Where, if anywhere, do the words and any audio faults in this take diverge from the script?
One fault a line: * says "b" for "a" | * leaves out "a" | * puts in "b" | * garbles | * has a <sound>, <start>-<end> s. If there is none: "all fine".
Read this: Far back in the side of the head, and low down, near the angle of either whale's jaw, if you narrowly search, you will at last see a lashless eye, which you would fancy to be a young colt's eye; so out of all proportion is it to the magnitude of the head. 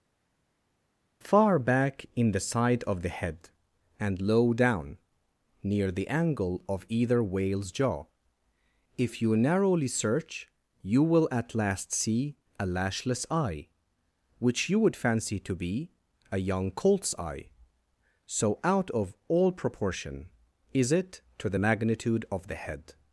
all fine